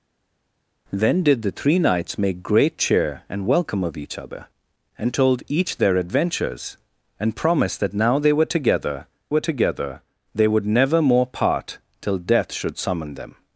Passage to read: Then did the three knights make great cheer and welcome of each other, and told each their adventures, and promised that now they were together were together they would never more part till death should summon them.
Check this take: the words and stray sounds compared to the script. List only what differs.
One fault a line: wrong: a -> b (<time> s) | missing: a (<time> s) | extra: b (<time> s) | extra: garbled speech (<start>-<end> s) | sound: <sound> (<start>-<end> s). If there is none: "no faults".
no faults